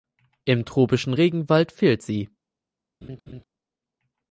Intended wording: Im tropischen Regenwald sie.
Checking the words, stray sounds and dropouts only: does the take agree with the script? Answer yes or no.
no